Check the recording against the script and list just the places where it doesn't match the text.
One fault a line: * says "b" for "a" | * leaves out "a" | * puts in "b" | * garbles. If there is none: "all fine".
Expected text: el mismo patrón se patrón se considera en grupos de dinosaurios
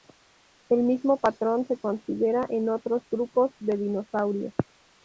* leaves out "patrón se"
* puts in "otros"